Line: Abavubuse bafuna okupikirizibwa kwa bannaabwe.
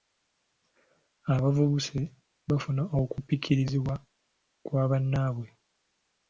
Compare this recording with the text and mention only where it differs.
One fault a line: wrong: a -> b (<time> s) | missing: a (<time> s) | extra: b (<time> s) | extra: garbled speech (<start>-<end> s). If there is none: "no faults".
no faults